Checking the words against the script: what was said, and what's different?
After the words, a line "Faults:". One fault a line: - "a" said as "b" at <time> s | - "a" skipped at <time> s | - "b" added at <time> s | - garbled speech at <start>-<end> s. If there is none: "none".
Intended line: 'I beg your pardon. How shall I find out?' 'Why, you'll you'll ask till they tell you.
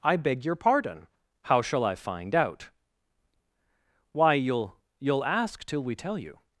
'I beg your pardon. How shall I find out?' 'Why, you'll you'll ask till we tell you.
Faults:
- "they" said as "we" at 5.8 s